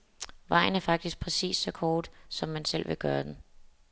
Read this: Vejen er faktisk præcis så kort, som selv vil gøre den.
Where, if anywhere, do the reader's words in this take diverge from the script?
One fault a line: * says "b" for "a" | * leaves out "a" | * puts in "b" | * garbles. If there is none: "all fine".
* puts in "man"